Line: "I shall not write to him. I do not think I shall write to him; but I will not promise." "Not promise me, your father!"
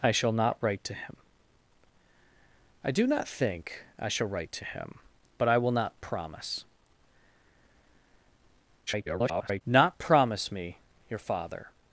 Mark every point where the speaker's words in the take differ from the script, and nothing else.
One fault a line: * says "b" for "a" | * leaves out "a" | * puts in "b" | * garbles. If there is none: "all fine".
* garbles